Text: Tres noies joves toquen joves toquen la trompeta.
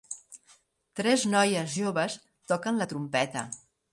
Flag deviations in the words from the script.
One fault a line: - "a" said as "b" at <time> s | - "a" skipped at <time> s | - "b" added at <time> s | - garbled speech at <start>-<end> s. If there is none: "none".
- "joves toquen" skipped at 2.8 s